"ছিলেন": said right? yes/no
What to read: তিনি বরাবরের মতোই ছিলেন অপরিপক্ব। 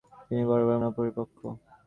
no